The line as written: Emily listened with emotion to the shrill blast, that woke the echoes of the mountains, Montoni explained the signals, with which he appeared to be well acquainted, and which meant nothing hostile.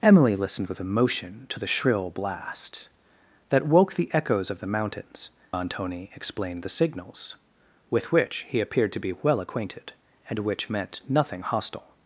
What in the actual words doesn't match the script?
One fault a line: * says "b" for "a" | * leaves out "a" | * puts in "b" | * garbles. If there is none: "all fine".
all fine